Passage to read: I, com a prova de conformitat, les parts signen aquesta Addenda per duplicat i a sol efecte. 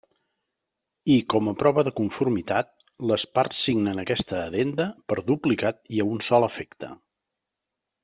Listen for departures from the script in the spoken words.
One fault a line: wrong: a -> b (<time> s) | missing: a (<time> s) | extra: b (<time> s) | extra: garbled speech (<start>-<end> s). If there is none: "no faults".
extra: un (6.1 s)